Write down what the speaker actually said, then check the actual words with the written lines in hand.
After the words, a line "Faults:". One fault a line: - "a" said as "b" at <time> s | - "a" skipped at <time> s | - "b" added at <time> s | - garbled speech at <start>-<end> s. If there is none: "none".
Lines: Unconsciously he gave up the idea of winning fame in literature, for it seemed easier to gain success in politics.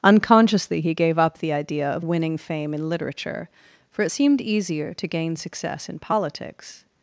Unconsciously he gave up the idea of winning fame in literature, for it seemed easier to gain success in politics.
Faults:
none